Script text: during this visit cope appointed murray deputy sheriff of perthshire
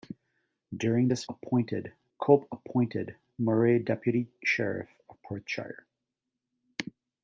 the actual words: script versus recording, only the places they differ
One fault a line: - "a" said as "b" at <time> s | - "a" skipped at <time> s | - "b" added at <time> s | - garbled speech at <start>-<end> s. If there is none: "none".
- "visit" said as "appointed" at 1.3 s